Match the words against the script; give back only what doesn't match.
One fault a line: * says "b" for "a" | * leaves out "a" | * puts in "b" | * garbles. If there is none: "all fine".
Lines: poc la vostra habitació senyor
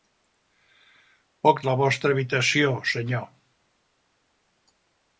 all fine